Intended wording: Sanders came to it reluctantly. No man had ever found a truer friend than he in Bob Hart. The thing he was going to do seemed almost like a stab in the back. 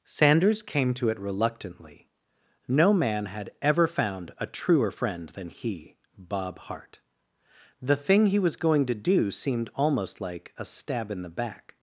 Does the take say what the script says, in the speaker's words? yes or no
no